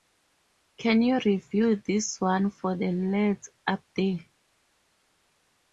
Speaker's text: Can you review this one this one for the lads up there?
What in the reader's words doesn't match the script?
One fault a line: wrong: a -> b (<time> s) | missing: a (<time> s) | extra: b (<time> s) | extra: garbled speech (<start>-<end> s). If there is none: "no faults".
missing: this one (2.5 s)